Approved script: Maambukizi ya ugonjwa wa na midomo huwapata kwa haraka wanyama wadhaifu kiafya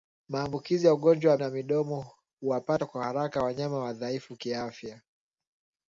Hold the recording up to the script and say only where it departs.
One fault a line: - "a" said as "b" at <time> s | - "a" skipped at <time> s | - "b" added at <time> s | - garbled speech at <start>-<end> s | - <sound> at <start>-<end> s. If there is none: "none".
none